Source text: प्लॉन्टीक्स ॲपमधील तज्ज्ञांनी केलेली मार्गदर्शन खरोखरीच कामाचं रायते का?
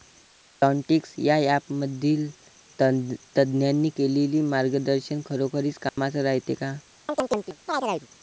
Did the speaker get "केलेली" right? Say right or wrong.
right